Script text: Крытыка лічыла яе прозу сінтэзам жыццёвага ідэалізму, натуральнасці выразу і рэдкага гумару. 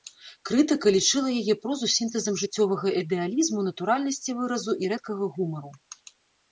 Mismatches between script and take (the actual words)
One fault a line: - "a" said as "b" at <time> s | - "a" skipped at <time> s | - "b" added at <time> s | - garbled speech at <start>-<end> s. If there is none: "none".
none